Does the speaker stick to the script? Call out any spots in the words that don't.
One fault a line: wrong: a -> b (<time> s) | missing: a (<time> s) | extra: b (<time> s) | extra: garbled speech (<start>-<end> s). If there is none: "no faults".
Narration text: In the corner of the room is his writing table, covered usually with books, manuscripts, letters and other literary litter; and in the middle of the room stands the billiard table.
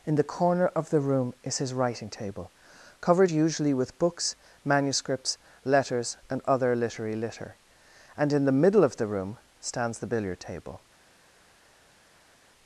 no faults